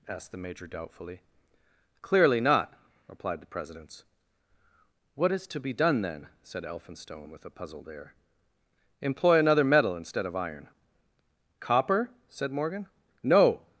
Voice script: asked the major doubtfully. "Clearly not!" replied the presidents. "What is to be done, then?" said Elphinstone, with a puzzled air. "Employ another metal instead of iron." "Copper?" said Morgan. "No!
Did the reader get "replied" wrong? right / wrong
right